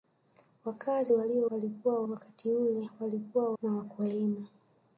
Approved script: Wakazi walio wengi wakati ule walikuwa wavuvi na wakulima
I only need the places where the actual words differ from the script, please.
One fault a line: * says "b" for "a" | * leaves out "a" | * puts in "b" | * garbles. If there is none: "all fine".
* says "walikuwa" for "wengi"
* leaves out "wavuvi"